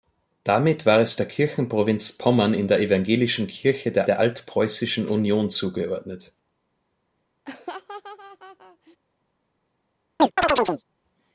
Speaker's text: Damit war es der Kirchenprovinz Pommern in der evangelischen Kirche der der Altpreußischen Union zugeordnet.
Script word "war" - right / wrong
right